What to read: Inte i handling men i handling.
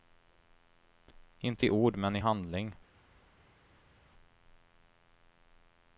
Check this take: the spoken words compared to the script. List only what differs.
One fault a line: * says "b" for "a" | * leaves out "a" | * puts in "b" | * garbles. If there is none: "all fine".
* says "ord" for "handling"